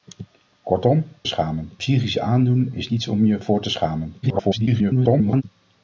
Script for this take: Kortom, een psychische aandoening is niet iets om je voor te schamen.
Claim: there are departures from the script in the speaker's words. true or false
true